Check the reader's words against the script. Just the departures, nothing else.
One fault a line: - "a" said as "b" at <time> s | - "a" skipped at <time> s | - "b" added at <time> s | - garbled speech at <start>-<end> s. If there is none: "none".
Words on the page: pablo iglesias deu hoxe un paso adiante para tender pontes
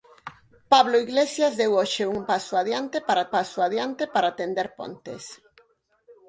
- "paso adiante para" added at 3.3 s